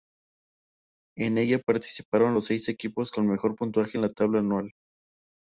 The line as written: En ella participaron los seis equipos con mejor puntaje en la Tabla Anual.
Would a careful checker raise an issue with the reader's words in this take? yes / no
no